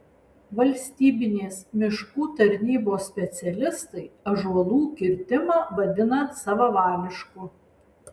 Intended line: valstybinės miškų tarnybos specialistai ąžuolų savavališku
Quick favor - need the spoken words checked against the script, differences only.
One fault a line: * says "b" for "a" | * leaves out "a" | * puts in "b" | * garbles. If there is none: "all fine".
* puts in "kirtimą vadina"